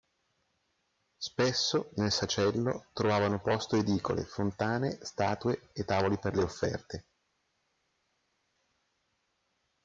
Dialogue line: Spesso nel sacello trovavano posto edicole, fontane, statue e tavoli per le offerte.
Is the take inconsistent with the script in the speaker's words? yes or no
no